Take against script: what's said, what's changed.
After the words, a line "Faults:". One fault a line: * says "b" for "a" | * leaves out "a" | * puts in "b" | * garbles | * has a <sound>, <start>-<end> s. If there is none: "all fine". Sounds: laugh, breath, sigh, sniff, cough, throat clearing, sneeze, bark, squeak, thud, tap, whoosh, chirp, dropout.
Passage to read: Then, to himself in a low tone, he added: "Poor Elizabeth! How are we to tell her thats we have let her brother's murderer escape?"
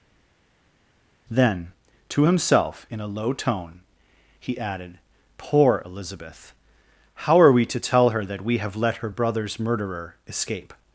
Then, to himself in a low tone, he added: "Poor Elizabeth! How are we to tell her that we have let her brother's murderer escape?"
Faults:
* says "that" for "thats"